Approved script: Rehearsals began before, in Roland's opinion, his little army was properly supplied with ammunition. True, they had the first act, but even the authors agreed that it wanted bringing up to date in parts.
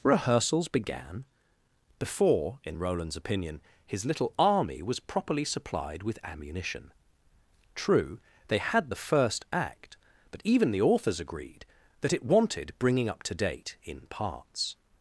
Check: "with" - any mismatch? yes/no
no